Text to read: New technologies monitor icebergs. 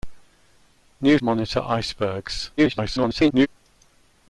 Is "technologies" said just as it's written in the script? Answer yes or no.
no